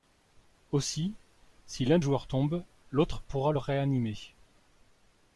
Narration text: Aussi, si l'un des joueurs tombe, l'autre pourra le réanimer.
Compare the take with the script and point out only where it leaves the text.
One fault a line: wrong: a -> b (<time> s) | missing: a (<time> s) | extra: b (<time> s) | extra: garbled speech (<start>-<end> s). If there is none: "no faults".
missing: des (2.0 s)